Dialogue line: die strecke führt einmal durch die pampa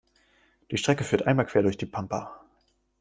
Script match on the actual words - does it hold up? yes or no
no